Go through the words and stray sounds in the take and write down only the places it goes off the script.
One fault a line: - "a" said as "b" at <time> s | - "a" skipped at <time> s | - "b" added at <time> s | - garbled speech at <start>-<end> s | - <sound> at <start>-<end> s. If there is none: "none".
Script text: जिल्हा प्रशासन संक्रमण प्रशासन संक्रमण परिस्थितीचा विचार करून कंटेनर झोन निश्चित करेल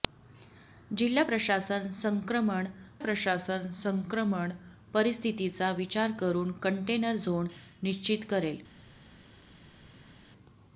none